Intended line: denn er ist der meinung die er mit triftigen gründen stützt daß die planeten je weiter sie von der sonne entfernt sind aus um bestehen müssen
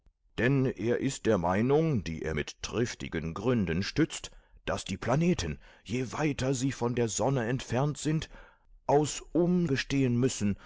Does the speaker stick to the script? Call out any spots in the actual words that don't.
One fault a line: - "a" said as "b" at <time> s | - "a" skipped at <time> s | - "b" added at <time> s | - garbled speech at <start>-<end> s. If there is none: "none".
none